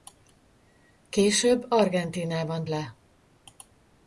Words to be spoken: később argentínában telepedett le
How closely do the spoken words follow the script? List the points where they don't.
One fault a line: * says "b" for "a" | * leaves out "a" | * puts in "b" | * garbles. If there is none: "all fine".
* leaves out "telepedett"